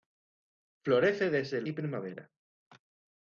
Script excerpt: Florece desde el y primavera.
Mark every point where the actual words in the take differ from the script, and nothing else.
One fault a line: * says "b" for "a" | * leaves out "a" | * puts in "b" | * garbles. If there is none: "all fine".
all fine